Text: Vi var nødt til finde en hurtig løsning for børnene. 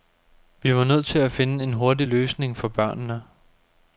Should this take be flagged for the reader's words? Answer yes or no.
yes